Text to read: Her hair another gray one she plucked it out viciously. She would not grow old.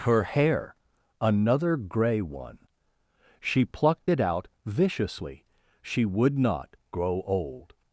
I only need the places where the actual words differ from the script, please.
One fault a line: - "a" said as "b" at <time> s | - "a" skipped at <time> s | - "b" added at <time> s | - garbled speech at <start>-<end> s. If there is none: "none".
none